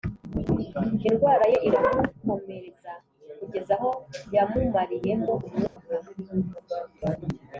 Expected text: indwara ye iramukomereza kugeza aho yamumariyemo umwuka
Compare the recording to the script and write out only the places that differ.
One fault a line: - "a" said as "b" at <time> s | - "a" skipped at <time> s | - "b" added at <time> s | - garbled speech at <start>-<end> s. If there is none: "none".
none